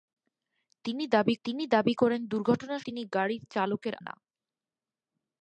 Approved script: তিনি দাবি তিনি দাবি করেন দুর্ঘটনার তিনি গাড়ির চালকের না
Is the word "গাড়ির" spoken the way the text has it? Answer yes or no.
yes